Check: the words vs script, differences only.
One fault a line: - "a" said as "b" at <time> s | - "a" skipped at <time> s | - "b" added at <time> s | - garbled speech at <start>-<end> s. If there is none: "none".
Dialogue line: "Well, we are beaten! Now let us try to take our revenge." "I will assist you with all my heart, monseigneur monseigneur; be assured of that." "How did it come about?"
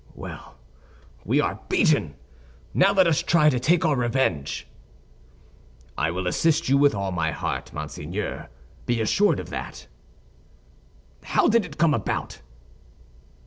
- "monseigneur" skipped at 8.5 s